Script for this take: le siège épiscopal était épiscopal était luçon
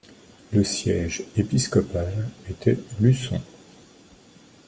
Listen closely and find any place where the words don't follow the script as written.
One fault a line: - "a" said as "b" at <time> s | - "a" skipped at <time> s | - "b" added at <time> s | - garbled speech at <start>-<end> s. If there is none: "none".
- "épiscopal était" skipped at 2.8 s